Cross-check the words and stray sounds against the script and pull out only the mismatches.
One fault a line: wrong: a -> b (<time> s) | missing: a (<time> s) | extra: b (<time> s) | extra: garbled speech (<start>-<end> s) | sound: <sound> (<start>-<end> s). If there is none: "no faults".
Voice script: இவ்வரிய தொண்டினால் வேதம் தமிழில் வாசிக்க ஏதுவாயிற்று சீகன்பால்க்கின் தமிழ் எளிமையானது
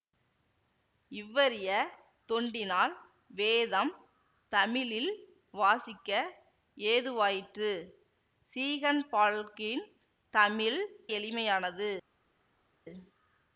no faults